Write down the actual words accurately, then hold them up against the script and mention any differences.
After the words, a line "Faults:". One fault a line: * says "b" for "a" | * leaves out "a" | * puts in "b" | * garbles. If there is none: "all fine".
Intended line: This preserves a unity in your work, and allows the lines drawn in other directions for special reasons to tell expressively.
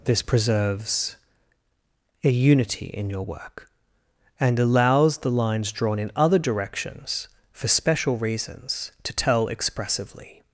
This preserves a unity in your work, and allows the lines drawn in other directions for special reasons to tell expressively.
Faults:
all fine